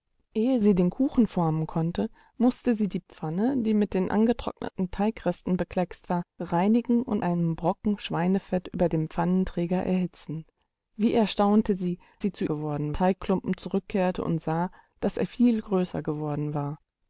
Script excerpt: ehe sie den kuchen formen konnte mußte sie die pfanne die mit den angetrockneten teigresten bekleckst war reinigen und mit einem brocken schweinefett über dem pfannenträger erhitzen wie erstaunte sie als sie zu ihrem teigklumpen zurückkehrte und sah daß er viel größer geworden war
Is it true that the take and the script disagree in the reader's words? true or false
true